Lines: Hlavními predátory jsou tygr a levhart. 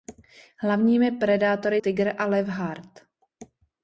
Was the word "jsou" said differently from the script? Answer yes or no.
yes